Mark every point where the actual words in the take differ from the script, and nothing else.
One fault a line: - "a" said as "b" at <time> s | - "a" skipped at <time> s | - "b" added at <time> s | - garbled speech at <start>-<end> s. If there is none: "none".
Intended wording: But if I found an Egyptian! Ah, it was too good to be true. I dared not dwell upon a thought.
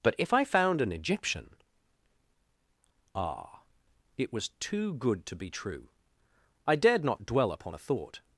none